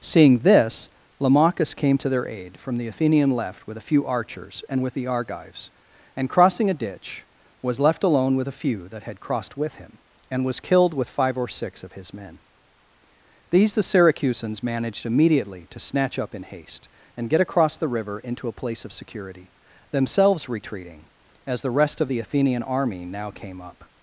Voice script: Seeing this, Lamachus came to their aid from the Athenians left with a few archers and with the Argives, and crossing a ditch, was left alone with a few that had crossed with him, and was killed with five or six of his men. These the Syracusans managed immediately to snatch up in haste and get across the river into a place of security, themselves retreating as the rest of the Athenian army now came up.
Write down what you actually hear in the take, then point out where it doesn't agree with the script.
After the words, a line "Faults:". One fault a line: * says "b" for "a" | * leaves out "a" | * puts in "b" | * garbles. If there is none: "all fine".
Seeing this, Lamachus came to their aid from the Athenian left with a few archers and with the Argives, and crossing a ditch, was left alone with a few that had crossed with him, and was killed with five or six of his men. These the Syracusans managed immediately to snatch up in haste and get across the river into a place of security, themselves retreating as the rest of the Athenian army now came up.
Faults:
* says "Athenian" for "Athenians"